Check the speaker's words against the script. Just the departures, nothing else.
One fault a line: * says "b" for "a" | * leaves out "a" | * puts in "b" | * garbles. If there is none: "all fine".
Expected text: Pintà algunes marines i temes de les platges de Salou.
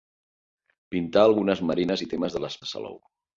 * leaves out "platges"